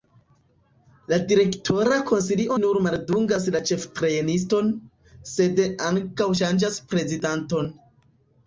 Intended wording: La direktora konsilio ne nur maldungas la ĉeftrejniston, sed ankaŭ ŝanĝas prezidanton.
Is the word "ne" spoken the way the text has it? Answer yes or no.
no